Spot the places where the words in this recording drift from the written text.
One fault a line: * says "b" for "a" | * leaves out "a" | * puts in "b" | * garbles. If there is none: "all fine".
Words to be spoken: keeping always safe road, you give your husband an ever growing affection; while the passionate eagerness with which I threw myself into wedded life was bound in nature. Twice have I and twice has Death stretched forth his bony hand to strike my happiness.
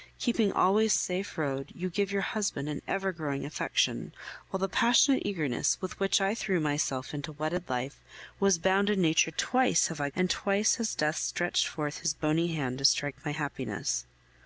all fine